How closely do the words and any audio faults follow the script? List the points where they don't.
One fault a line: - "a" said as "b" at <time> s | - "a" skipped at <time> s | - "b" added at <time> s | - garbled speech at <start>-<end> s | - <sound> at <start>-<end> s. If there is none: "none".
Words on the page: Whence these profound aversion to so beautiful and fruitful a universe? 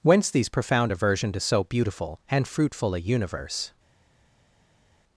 none